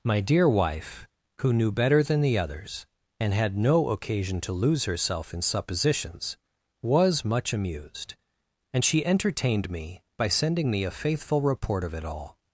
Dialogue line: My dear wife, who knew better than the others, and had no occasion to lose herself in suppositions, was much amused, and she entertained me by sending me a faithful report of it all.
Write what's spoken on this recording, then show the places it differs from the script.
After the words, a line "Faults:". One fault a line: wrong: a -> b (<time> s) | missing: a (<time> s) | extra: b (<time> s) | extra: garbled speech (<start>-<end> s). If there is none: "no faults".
My dear wife, who knew better than the others, and had no occasion to lose herself in suppositions, was much amused, and she entertained me by sending me a faithful report of it all.
Faults:
no faults